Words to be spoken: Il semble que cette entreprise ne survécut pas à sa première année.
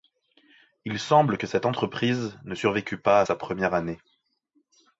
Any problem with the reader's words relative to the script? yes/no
no